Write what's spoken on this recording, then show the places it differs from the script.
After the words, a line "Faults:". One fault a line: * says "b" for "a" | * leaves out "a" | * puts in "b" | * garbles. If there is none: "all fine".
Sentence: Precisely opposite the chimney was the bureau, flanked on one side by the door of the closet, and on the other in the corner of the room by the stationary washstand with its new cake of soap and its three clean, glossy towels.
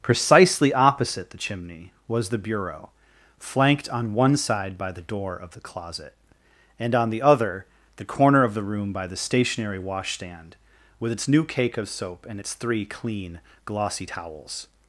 Precisely opposite the chimney was the bureau, flanked on one side by the door of the closet, and on the other the corner of the room by the stationary washstand with its new cake of soap and its three clean, glossy towels.
Faults:
* leaves out "in"